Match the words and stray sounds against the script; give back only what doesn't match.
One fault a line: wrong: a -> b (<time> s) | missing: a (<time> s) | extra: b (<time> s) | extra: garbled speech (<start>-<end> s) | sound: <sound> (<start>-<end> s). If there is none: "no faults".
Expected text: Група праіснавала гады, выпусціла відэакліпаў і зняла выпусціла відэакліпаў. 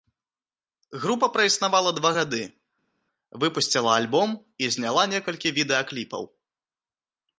extra: два (2.0 s)
wrong: відэакліпаў -> альбом (4.0 s)
wrong: выпусціла -> некалькі (5.2 s)